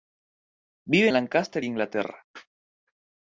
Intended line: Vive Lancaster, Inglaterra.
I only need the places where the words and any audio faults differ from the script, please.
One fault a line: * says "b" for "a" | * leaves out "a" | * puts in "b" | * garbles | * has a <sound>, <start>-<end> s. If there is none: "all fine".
all fine